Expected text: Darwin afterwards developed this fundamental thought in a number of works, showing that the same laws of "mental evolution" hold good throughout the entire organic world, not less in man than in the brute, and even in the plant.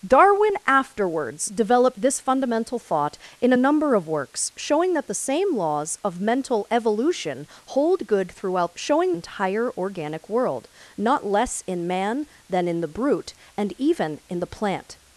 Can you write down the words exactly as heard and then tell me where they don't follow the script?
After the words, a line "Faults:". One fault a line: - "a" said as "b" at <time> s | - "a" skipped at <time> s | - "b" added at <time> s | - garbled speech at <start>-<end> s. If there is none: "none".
Darwin afterwards developed this fundamental thought in a number of works, showing that the same laws of "mental evolution" hold good throughout showing entire organic world, not less in man than in the brute, and even in the plant.
Faults:
- "the" said as "showing" at 8.7 s